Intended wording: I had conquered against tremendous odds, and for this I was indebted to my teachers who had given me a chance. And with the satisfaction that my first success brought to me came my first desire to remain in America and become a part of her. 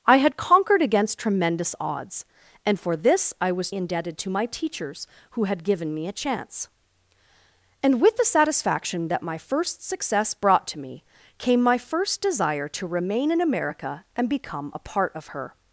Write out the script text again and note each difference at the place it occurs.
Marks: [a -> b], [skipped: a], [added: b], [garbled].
I had conquered against tremendous odds, and for this I was indebted to my teachers who had given me a chance. And with the satisfaction that my first success brought to me came my first desire to remain in America and become a part of her.